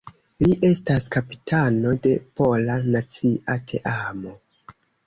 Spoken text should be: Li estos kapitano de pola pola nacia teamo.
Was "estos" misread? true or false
true